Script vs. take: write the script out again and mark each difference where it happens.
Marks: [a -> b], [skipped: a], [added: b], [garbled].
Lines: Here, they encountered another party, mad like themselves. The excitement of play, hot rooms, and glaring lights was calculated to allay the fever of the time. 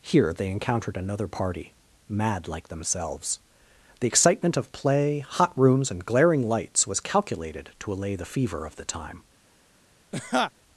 Here, they encountered another party, mad like themselves. The excitement of play, hot rooms, and glaring lights was calculated to allay the fever of the time.